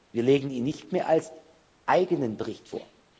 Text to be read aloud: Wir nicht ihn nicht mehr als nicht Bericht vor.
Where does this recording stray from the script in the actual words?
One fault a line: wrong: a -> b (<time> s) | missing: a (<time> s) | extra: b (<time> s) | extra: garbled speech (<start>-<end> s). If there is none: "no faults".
wrong: nicht -> legen (0.2 s)
wrong: nicht -> eigenen (1.9 s)